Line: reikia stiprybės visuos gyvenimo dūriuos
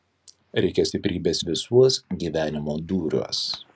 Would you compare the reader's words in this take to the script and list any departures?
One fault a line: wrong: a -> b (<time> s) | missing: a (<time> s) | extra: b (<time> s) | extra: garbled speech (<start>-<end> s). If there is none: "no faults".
no faults